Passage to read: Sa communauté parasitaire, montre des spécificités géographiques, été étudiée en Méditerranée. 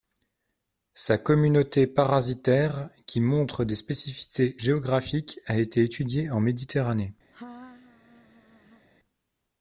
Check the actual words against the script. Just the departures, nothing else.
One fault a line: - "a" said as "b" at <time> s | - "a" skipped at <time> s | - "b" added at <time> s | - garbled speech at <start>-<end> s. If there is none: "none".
- "qui" added at 3.1 s
- "a" added at 5.4 s